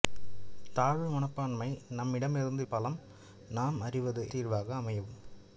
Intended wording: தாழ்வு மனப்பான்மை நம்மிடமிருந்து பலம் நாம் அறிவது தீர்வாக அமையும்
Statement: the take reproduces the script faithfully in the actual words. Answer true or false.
true